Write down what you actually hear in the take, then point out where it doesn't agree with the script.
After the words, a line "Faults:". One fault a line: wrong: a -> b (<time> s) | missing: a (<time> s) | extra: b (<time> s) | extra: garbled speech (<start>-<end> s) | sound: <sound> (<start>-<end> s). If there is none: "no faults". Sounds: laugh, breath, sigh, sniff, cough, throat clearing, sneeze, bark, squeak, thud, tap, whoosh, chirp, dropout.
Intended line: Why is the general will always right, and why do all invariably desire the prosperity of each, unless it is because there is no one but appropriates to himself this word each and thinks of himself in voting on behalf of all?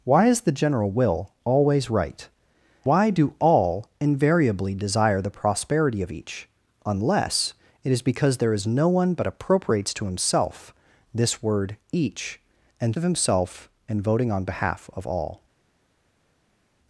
Why is the general will always right, why do all invariably desire the prosperity of each, unless it is because there is no one but appropriates to himself this word each and of himself in voting on behalf of all?
Faults:
missing: and (2.3 s)
missing: thinks (12.9 s)